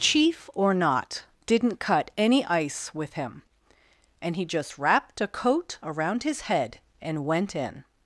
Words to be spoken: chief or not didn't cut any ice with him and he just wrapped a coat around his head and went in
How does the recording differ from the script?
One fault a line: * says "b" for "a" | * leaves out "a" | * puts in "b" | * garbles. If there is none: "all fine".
all fine